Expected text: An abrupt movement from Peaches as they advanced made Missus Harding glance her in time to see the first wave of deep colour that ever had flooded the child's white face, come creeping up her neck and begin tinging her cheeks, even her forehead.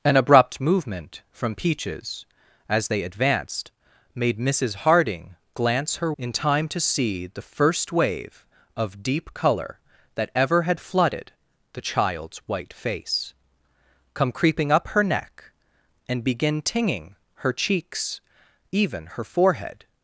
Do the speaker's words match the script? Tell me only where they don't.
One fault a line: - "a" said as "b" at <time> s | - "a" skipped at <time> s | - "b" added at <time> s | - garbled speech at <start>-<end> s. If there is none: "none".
none